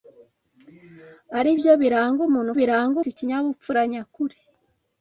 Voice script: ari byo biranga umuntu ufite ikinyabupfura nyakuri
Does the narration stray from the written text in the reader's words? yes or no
yes